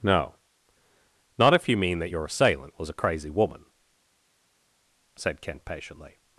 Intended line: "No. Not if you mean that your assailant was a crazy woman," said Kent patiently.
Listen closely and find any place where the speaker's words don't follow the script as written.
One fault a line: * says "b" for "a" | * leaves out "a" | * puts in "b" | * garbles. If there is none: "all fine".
all fine